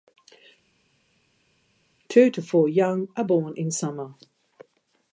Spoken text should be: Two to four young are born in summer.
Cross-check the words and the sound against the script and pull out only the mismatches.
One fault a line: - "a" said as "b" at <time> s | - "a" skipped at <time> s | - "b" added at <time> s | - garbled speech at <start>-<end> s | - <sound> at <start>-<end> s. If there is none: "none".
none